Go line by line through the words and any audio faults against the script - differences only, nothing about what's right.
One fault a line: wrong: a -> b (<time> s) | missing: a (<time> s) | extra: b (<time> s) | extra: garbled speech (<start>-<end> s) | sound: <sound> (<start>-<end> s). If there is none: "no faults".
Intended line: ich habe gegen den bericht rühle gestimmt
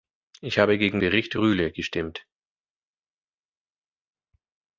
missing: den (1.0 s)